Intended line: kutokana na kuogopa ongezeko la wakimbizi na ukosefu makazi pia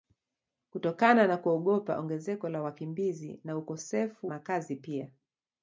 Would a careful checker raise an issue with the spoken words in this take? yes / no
no